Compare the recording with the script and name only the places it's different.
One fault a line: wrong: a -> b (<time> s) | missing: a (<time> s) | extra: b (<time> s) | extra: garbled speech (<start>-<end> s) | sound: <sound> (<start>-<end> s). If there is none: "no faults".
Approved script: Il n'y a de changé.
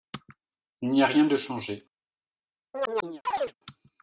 extra: rien (1.1 s)
sound: chirp (2.7-3.5 s)